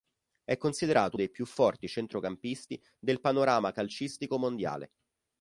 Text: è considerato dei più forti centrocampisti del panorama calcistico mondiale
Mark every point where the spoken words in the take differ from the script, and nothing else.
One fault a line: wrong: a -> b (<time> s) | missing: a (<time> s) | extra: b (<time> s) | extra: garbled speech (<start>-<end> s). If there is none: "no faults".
no faults